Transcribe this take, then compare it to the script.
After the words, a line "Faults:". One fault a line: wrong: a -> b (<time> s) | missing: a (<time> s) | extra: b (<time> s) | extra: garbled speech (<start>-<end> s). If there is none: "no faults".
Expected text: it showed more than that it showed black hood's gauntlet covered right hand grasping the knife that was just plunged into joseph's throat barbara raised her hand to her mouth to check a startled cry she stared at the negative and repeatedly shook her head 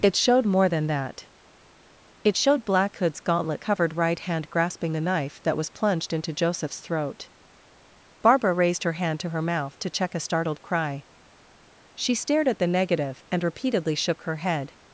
it showed more than that it showed black hood's gauntlet covered right hand grasping the knife that was plunged into joseph's throat barbara raised her hand to her mouth to check a startled cry she stared at the negative and repeatedly shook her head
Faults:
missing: just (5.7 s)